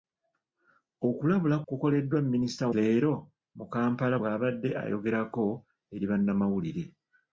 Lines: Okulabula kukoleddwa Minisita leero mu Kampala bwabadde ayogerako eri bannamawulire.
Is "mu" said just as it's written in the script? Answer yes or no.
yes